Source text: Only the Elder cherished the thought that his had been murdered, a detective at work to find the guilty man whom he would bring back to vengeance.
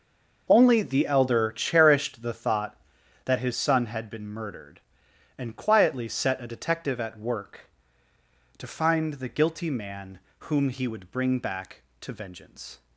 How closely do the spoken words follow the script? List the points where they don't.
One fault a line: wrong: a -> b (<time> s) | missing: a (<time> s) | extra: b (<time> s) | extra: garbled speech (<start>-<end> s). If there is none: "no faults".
extra: son (3.5 s)
extra: and quietly set (5.4 s)